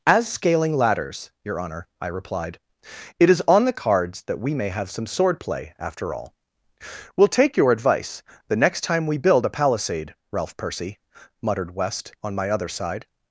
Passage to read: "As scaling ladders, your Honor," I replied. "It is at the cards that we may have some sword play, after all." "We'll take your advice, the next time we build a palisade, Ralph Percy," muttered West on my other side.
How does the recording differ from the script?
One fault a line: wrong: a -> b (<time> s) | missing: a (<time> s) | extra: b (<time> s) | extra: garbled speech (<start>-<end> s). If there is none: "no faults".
wrong: at -> on (3.5 s)